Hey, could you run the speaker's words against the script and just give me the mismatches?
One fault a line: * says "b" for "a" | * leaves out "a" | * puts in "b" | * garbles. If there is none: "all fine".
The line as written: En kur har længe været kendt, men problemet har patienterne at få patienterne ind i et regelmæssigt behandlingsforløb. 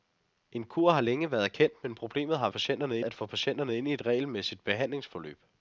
all fine